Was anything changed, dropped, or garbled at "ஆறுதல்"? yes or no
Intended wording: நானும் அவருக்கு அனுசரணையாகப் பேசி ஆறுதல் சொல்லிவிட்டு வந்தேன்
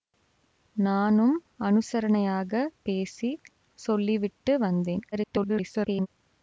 yes